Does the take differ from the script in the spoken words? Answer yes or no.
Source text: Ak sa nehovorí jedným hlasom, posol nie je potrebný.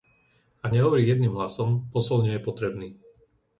yes